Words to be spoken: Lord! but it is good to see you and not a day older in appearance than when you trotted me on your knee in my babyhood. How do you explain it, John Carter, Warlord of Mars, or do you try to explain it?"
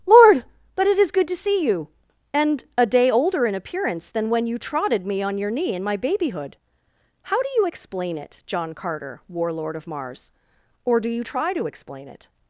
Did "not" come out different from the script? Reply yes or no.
yes